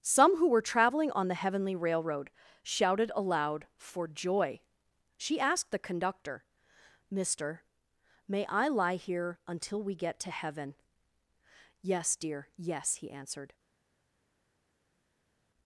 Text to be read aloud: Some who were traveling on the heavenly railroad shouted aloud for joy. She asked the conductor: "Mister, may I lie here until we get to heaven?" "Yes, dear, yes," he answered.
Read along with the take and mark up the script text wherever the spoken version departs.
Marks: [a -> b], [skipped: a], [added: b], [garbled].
Some who were traveling on the heavenly railroad shouted aloud for joy. She asked the conductor: "Mister, may I lie here until we get to heaven?" "Yes, dear, yes," he answered.